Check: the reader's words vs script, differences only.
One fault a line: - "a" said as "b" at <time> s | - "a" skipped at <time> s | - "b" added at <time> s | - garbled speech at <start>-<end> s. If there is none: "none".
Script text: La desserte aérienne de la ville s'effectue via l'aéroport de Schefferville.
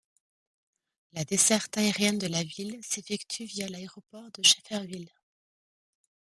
none